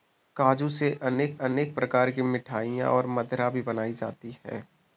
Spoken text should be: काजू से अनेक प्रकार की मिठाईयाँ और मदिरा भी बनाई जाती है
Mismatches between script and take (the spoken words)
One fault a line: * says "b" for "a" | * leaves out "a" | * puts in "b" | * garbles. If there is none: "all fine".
* puts in "अनेक"